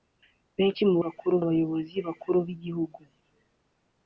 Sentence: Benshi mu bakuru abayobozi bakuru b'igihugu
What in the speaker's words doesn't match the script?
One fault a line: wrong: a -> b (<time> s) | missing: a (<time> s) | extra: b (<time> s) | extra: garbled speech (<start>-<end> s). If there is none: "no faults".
no faults